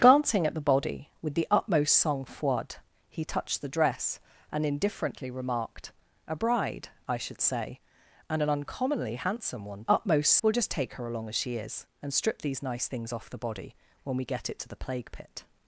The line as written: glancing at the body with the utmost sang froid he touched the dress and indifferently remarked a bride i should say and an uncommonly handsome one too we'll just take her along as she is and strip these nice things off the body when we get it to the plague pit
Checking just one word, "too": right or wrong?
wrong